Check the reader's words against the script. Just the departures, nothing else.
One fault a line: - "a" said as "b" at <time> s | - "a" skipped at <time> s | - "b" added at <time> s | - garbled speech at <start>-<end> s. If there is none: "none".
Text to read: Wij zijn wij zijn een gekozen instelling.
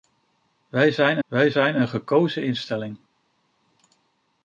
none